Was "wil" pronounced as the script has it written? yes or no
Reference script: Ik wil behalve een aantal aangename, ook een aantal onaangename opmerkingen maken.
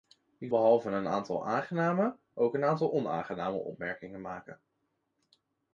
no